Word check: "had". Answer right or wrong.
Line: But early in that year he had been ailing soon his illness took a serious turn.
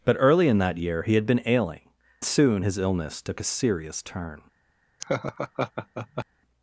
right